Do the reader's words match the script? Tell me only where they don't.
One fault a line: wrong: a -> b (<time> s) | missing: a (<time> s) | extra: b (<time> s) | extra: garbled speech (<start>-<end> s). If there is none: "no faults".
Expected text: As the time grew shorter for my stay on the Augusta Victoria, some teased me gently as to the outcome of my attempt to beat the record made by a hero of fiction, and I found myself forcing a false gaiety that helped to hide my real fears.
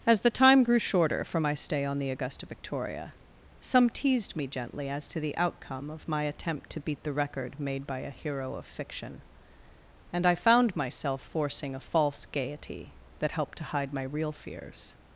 no faults